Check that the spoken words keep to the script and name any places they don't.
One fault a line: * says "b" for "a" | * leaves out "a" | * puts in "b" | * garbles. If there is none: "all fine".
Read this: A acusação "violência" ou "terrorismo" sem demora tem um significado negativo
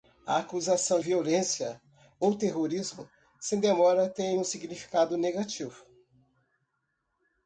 all fine